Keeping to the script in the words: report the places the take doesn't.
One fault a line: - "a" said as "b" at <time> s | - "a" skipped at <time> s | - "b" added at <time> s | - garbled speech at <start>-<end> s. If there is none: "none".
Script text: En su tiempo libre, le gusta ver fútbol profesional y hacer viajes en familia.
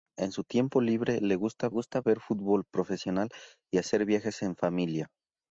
- "gusta" added at 1.7 s